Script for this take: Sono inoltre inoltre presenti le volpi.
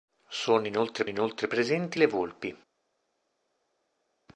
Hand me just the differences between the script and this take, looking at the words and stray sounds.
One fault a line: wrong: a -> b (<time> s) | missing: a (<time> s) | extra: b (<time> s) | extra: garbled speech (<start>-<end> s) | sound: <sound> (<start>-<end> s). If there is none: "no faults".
no faults